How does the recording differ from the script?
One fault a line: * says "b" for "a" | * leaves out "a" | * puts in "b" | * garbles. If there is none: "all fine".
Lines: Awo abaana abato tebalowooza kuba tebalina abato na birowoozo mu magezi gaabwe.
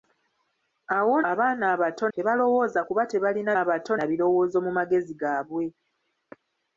all fine